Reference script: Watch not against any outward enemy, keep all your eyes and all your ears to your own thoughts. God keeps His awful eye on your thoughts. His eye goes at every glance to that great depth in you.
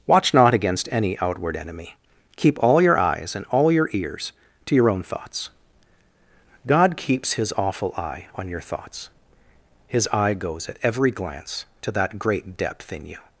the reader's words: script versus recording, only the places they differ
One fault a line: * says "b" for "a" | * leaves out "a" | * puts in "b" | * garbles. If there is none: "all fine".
all fine